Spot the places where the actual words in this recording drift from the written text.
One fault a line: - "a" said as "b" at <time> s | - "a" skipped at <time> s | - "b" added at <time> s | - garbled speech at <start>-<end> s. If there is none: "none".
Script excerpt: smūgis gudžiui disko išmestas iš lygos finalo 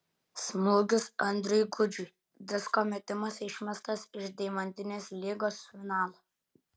- "andriui" added at 1.2 s
- "metimas" added at 2.9 s
- "deimantinės" added at 4.4 s